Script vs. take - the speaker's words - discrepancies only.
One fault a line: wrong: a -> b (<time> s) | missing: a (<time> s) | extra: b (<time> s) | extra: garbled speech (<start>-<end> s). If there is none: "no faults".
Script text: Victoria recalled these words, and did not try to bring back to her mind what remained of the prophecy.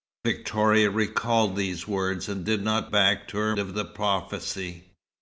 missing: try to bring (2.9 s)
missing: mind what remained (3.6 s)